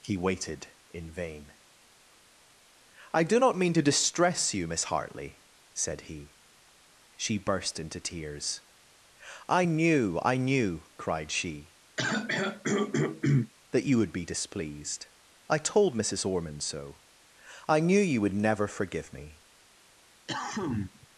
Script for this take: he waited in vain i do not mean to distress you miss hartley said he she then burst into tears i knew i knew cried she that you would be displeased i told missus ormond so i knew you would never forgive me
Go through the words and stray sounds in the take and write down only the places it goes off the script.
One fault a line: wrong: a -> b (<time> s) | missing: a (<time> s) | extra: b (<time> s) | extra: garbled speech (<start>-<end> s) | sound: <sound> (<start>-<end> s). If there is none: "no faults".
missing: then (7.4 s)
sound: throat clearing (12.0-13.5 s)
sound: cough (20.3-21.1 s)